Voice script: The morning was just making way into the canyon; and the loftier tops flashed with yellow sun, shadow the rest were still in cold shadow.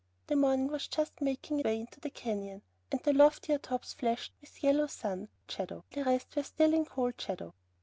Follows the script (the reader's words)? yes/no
yes